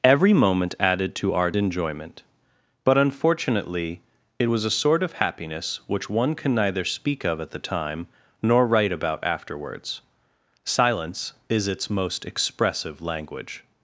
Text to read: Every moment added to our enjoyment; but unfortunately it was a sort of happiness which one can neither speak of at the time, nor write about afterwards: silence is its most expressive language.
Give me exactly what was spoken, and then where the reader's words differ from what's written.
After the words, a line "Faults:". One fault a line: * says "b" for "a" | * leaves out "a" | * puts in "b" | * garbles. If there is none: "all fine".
Every moment added to our enjoyment; but unfortunately it was a sort of happiness which one can neither speak of at the time, nor write about afterwards: silence is its most expressive language.
Faults:
all fine